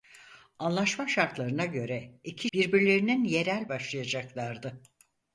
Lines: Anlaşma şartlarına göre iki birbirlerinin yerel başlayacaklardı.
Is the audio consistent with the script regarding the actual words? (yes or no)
yes